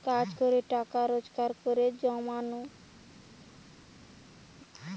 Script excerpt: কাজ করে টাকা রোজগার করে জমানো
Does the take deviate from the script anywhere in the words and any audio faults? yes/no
no